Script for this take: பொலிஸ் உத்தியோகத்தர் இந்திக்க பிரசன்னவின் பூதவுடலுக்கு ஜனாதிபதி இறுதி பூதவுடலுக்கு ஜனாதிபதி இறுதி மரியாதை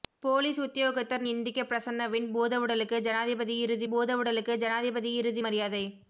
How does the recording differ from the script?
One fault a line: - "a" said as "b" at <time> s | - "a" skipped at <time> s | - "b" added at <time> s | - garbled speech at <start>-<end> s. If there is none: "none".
none